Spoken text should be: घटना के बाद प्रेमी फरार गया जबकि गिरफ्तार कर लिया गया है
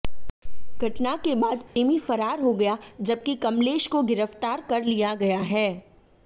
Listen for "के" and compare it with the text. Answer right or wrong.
right